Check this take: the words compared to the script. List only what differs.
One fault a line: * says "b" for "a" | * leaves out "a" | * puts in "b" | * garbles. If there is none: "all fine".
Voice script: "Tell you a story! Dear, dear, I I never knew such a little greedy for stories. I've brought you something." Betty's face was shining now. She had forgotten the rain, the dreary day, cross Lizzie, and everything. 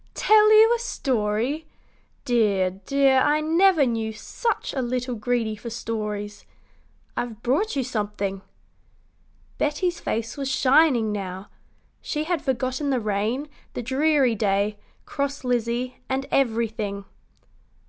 * leaves out "I"